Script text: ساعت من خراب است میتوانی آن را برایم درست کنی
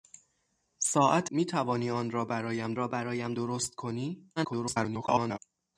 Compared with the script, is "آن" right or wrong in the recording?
wrong